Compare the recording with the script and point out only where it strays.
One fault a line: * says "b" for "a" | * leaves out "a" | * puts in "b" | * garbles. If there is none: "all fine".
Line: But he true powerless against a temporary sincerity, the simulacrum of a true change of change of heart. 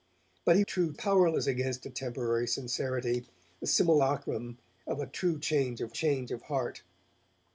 all fine